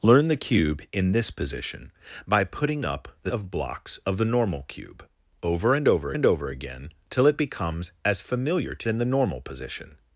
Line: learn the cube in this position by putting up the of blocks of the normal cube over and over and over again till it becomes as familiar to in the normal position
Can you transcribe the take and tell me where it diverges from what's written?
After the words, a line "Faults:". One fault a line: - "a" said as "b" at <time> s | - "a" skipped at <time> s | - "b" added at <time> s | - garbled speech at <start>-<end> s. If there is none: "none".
learn the cube in this position by putting up the of blocks of the normal cube over and over and over again till it becomes as familiar to in the normal position
Faults:
none